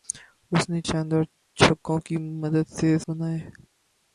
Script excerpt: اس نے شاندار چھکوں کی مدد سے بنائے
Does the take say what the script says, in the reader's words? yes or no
yes